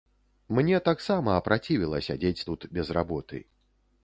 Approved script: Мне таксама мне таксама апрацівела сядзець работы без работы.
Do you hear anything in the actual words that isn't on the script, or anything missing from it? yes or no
yes